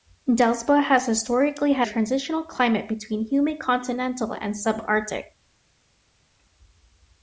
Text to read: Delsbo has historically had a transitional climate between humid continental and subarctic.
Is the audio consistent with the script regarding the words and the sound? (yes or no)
no